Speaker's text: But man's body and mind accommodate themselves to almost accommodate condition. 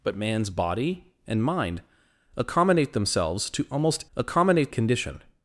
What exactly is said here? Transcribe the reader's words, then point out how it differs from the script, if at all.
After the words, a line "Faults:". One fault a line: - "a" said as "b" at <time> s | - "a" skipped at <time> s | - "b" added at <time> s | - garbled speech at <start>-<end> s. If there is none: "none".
But man's body and mind accommodate themselves to almost accommodate condition.
Faults:
none